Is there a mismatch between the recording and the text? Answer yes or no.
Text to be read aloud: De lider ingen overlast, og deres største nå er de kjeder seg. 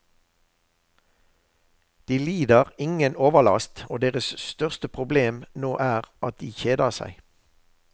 yes